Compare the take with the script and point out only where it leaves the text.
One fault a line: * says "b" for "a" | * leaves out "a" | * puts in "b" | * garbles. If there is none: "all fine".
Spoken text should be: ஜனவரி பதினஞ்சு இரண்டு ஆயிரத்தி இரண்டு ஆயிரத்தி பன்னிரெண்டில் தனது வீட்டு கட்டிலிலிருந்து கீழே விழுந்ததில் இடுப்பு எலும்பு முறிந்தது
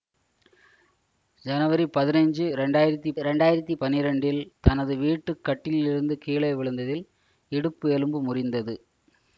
all fine